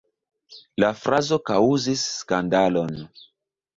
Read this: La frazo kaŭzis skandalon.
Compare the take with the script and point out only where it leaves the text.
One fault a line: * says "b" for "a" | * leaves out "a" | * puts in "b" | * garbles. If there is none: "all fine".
all fine